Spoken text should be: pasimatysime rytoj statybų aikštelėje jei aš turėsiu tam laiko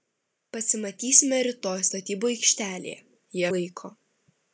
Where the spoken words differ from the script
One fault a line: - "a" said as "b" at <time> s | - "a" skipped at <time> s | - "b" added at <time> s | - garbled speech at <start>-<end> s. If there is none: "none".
- "aš turėsiu tam" skipped at 3.5 s